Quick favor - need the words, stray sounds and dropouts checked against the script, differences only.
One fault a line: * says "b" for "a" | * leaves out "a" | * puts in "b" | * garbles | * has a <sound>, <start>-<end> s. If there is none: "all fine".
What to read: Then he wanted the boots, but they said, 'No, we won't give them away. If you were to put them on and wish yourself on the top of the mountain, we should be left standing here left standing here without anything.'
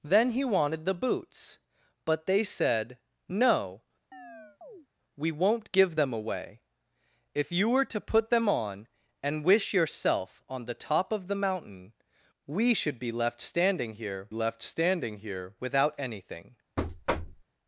* has a chirp, 4.1-4.9 s
* has a thud, 16.8-17.4 s